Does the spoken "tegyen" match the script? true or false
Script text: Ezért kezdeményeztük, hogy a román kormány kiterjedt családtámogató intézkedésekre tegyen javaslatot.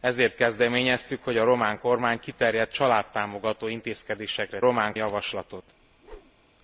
false